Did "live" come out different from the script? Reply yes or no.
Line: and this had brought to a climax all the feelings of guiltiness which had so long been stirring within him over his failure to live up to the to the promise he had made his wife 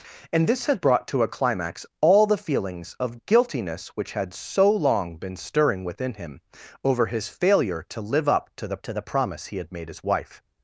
no